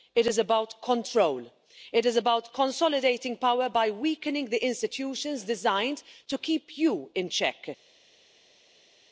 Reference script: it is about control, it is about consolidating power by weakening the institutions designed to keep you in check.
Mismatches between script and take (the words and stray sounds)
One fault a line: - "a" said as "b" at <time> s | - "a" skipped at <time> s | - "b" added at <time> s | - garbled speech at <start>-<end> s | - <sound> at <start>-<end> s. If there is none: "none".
none